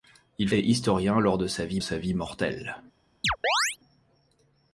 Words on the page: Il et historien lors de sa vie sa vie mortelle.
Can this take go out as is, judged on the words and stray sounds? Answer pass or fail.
fail